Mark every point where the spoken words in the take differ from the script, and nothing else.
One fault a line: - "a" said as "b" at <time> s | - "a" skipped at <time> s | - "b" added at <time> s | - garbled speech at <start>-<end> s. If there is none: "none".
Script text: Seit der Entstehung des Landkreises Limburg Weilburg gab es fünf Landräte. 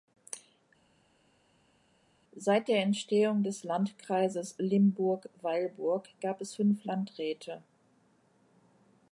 none